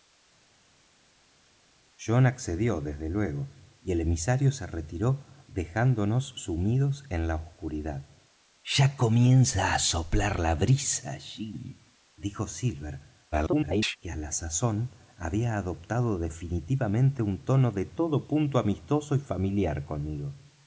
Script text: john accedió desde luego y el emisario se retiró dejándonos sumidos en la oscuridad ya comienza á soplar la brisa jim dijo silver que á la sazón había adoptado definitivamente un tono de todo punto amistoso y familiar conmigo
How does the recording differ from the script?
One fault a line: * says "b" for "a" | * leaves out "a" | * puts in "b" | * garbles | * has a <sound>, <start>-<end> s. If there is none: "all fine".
* garbles